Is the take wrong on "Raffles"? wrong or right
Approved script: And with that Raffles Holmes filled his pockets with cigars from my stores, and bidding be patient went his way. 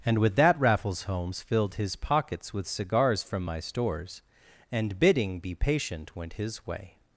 right